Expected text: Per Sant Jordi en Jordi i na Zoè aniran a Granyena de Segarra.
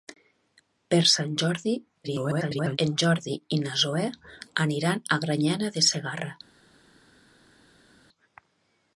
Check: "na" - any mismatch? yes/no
no